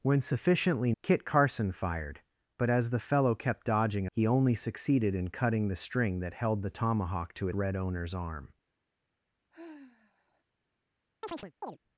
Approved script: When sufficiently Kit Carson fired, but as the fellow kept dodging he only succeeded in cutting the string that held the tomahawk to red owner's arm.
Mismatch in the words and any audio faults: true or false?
true